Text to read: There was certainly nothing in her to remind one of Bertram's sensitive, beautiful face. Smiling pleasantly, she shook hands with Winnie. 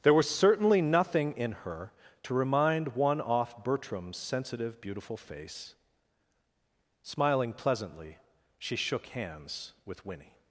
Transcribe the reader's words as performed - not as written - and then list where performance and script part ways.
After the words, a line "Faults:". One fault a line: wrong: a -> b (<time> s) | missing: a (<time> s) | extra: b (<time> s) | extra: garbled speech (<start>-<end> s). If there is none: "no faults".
There was certainly nothing in her to remind one off Bertram's sensitive, beautiful face. Smiling pleasantly, she shook hands with Winnie.
Faults:
wrong: of -> off (3.2 s)